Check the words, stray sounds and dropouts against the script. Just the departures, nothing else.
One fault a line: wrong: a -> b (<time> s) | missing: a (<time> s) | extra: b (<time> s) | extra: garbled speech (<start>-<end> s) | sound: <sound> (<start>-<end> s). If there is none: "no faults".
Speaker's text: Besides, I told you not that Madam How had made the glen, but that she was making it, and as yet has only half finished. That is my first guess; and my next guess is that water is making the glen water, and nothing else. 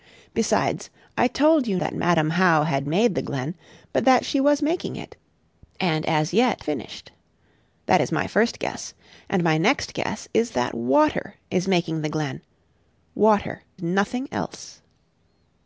missing: not (1.8 s)
missing: has only half (6.6 s)
missing: and (13.6 s)